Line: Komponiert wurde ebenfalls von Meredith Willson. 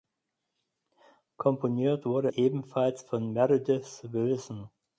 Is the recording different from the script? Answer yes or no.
no